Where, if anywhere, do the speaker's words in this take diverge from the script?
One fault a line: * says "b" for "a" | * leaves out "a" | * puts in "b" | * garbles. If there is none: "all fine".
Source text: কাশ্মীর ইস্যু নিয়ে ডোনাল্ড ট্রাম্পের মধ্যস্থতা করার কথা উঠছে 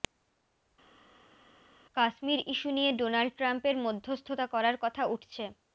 all fine